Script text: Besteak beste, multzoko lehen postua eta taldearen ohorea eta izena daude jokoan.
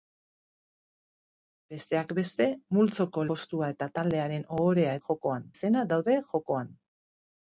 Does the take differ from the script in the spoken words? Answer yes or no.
yes